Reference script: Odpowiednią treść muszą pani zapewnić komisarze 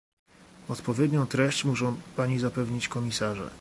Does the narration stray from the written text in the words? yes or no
no